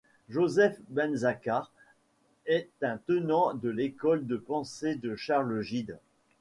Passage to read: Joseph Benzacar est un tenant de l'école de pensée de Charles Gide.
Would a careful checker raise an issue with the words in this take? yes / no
no